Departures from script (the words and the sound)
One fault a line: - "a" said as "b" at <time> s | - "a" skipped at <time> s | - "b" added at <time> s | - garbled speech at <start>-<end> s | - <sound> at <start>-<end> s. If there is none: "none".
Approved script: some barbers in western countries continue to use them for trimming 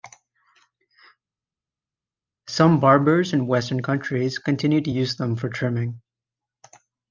none